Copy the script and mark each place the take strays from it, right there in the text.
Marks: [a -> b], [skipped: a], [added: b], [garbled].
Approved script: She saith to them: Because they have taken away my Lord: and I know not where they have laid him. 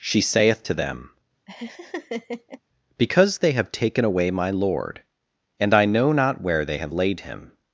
She saith to them: Because they have taken away my Lord: and I know not where they have laid him.